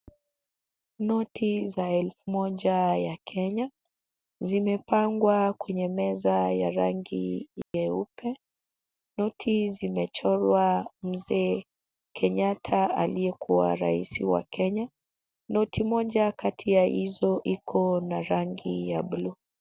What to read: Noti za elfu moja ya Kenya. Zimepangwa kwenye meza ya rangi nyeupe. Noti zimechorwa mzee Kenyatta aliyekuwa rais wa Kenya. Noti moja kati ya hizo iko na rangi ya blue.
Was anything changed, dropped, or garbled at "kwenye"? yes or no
no